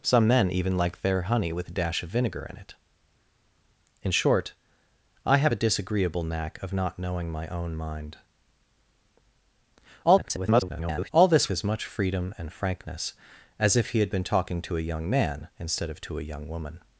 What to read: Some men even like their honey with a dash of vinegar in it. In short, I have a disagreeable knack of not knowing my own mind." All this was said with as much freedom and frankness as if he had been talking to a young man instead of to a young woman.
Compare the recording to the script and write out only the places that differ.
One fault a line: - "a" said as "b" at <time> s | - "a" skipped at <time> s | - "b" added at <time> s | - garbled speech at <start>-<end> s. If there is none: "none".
- garbled speech at 10.0-11.1 s
- "was said with" skipped at 11.5 s